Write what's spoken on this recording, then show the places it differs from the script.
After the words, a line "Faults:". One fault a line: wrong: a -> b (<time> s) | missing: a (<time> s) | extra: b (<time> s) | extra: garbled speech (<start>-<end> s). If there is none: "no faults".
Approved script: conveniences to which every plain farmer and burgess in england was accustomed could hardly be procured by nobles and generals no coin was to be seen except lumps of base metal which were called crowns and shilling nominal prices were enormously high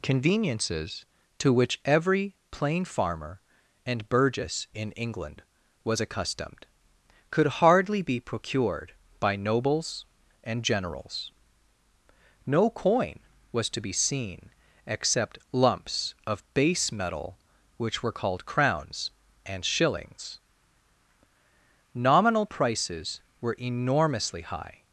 conveniences to which every plain farmer and burgess in england was accustomed could hardly be procured by nobles and generals no coin was to be seen except lumps of base metal which were called crowns and shillings nominal prices were enormously high
Faults:
wrong: shilling -> shillings (19.6 s)